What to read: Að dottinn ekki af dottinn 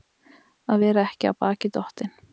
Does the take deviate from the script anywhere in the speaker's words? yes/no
yes